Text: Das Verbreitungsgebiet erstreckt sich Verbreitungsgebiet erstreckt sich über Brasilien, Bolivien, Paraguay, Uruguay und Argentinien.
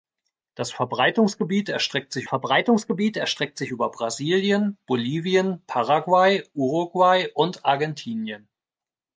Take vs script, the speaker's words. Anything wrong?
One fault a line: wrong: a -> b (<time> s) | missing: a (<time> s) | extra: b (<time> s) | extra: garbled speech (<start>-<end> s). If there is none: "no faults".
no faults